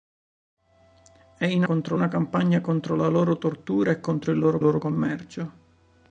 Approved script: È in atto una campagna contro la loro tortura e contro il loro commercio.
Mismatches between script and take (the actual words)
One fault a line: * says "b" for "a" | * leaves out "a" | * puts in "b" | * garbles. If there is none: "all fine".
* says "contro" for "atto"
* puts in "loro"